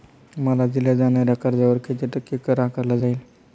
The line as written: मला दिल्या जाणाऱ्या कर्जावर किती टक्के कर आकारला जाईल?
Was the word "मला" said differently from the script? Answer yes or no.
no